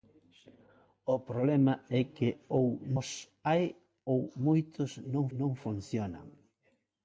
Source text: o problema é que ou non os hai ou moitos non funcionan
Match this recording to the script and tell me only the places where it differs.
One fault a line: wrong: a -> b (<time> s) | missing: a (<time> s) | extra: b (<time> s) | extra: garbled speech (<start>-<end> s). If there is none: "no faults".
missing: non (2.6 s)
extra: non (5.4 s)